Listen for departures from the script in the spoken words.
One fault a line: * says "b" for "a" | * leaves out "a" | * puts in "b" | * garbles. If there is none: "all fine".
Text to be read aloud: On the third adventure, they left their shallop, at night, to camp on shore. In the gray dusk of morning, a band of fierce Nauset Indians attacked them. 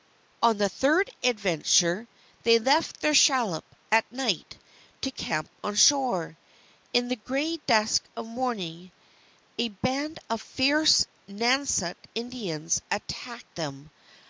all fine